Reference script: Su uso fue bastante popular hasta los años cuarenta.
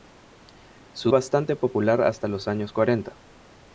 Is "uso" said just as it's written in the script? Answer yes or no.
no